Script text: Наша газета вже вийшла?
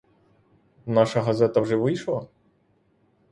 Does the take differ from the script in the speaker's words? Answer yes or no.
no